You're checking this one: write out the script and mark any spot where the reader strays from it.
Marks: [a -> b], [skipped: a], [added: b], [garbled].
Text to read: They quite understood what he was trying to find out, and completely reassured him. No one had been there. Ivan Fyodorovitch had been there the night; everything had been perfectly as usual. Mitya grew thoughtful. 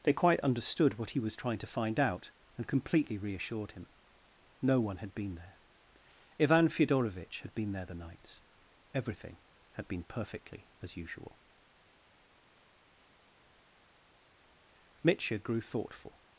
They quite understood what he was trying to find out, and completely reassured him. No one had been there. Ivan Fyodorovitch had been there the [night; -> nights] everything had been perfectly as usual. Mitya grew thoughtful.